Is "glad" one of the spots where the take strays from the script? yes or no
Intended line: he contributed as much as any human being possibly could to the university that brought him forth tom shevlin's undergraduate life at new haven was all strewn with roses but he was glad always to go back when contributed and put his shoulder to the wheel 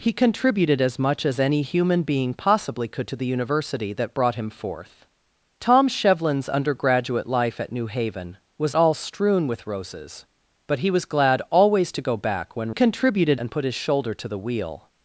no